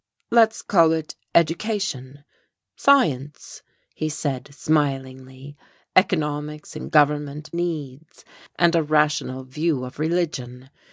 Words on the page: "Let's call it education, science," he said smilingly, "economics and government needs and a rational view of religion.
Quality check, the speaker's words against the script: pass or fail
pass